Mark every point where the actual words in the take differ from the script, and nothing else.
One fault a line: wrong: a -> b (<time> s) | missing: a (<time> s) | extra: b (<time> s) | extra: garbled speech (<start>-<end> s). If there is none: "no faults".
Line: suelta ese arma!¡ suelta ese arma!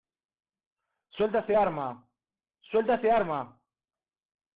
no faults